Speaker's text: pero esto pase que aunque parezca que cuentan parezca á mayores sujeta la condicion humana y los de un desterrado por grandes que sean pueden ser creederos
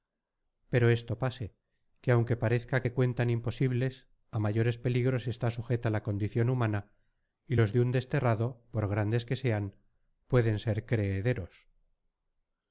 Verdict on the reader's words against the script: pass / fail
fail